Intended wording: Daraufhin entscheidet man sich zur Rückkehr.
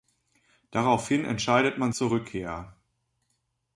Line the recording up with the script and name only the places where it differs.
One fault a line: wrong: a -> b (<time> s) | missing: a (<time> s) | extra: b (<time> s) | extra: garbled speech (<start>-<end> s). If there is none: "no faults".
missing: sich (1.9 s)